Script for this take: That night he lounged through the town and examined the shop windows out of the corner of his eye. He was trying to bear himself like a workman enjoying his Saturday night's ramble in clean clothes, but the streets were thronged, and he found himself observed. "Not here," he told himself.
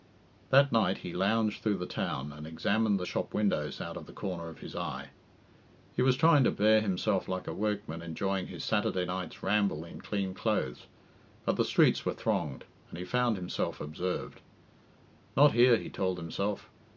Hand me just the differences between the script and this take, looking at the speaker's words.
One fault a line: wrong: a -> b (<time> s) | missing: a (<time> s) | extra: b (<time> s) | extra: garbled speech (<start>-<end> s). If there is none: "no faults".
no faults